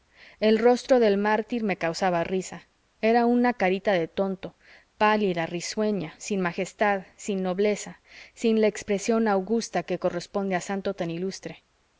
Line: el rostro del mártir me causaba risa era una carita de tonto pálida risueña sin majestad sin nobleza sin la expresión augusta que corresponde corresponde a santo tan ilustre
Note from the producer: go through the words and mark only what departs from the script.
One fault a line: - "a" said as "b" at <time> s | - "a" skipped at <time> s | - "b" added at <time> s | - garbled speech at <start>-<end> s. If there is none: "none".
- "corresponde" skipped at 10.5 s